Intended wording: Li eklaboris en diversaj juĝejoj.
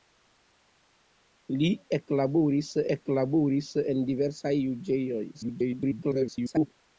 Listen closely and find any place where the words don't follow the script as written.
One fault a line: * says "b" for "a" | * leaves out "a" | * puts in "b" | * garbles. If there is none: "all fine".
* puts in "eklaboris"
* garbles